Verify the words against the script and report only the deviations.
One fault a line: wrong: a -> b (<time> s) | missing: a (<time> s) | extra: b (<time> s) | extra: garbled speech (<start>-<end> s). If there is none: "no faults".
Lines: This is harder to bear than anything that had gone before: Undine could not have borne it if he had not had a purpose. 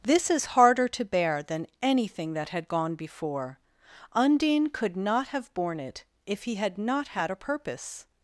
no faults